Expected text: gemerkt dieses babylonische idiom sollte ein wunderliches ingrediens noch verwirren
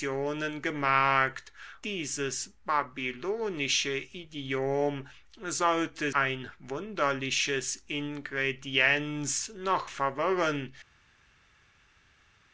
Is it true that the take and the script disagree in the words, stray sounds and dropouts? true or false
false